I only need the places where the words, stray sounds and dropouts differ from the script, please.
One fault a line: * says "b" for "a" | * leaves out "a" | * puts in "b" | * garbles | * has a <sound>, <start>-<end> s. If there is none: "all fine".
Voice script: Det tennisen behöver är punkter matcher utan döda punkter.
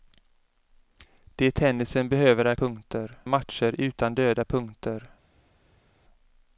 all fine